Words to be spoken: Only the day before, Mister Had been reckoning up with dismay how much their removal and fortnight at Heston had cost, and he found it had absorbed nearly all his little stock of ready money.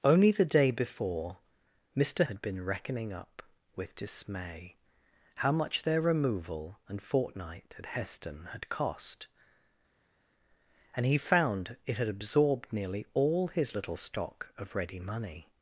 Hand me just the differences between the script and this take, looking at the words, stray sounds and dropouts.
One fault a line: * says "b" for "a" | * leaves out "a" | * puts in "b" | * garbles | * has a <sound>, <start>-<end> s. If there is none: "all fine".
all fine